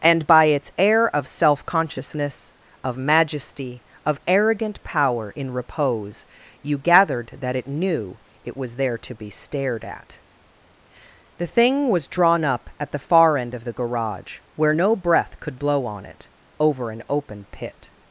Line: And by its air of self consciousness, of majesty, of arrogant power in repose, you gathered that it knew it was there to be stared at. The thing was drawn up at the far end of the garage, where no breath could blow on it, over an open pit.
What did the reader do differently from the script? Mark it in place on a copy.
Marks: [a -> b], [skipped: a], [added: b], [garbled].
And by its air of self consciousness, of majesty, of arrogant power in repose, you gathered that it knew it was there to be stared at. The thing was drawn up at the far end of the garage, where no breath could blow on it, over an open pit.